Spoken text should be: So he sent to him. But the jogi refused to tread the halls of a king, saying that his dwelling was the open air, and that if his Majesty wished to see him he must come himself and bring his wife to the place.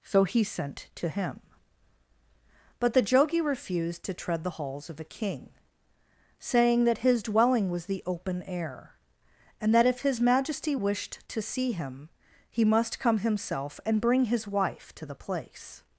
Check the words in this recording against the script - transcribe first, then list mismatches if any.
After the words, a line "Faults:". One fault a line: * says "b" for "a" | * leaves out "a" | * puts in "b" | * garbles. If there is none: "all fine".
So he sent to him. But the jogi refused to tread the halls of a king, saying that his dwelling was the open air, and that if his Majesty wished to see him he must come himself and bring his wife to the place.
Faults:
all fine